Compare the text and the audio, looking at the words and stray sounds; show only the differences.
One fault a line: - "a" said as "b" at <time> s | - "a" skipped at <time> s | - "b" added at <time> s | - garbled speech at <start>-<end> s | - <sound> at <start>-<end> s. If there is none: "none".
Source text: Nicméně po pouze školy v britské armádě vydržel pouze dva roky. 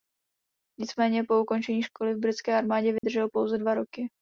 - "pouze" said as "ukončení" at 1.4 s
- dropout at 3.0-3.0 s